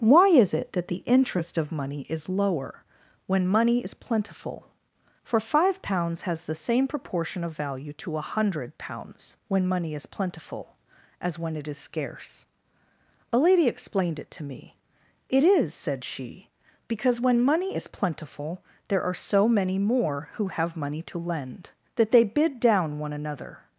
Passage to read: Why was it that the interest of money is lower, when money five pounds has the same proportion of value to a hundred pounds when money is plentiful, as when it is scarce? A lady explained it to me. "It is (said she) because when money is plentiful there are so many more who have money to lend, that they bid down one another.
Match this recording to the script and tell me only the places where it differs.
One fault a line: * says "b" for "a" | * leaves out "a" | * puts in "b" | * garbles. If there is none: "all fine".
* says "is" for "was"
* puts in "is plentiful for"